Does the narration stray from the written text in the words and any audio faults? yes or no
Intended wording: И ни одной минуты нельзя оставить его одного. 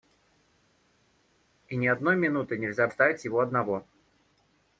no